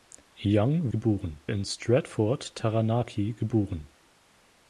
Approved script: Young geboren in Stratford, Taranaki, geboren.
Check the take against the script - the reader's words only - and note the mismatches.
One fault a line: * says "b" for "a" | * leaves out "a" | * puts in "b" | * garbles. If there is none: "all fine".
all fine